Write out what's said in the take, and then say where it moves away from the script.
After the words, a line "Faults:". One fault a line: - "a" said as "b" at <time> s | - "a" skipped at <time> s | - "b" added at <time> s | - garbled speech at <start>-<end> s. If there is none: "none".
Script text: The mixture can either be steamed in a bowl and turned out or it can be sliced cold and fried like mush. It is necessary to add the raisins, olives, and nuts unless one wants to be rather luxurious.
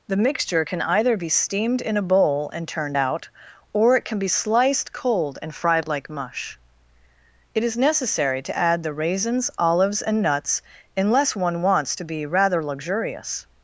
The mixture can either be steamed in a bowl and turned out or it can be sliced cold and fried like mush. It is necessary to add the raisins, olives, and nuts unless one wants to be rather luxurious.
Faults:
none